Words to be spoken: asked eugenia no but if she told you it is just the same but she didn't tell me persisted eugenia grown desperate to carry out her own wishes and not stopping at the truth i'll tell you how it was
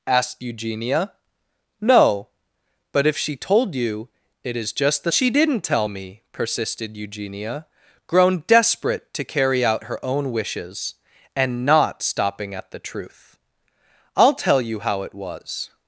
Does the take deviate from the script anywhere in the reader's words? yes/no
yes